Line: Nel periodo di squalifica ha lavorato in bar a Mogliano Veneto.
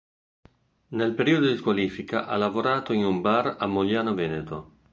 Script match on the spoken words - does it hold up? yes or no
no